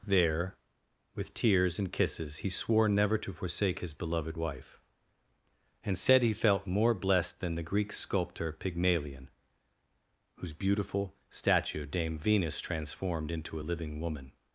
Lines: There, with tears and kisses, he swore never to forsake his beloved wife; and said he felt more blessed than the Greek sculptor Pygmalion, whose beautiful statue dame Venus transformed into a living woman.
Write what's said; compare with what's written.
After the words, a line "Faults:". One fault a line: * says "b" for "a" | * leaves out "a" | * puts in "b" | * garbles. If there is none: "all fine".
There, with tears and kisses, he swore never to forsake his beloved wife; and said he felt more blessed than the Greek sculptor Pygmalion, whose beautiful statue dame Venus transformed into a living woman.
Faults:
all fine